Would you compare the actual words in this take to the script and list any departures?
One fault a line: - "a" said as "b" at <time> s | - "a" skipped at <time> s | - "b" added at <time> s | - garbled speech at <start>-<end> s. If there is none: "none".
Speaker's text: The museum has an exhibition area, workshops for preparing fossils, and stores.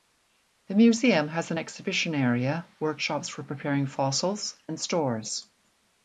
none